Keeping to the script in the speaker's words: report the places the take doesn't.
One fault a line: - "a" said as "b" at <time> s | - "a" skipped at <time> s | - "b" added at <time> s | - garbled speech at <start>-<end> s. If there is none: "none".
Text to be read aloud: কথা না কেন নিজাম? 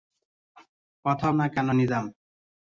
none